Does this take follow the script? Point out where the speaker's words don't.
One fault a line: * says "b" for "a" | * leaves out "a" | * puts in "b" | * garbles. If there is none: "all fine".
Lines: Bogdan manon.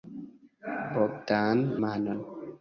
all fine